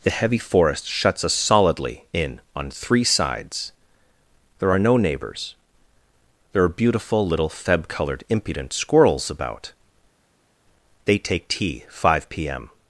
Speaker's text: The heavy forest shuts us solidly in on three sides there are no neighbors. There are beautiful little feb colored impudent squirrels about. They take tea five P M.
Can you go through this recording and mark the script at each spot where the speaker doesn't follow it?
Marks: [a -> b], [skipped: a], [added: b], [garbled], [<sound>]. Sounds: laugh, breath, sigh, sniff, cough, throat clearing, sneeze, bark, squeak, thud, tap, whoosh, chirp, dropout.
The heavy forest shuts us solidly in on three sides there are no neighbors. There are beautiful little feb colored impudent squirrels about. They take tea five P M.